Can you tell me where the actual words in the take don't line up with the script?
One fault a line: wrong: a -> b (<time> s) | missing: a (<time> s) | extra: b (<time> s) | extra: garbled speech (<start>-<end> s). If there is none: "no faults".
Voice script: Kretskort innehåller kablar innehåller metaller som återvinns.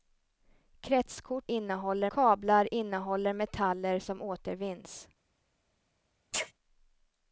no faults